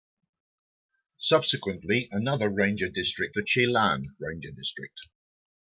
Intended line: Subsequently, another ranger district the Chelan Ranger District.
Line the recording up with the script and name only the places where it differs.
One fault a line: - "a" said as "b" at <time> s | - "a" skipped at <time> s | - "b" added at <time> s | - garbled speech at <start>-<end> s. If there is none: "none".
none